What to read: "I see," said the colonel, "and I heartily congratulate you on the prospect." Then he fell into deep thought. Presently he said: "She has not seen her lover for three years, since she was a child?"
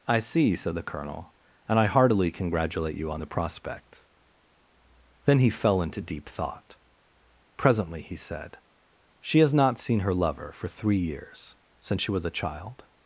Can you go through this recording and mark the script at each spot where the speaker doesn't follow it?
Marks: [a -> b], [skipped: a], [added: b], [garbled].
"I see," said the colonel, "and I heartily congratulate you on the prospect." Then he fell into deep thought. Presently he said: "She has not seen her lover for three years, since she was a child?"